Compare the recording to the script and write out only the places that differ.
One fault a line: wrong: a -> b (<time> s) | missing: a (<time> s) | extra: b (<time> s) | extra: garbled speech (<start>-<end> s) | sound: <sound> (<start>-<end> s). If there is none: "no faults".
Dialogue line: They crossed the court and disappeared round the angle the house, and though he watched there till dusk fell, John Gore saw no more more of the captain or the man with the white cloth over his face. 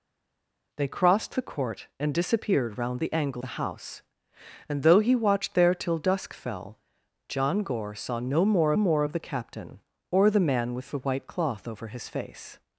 no faults